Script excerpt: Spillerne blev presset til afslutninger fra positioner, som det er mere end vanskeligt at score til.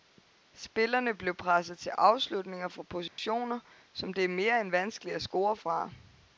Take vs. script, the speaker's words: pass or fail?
fail